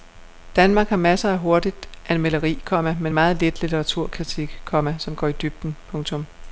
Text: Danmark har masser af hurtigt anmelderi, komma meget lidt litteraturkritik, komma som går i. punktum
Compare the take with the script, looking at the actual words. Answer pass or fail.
fail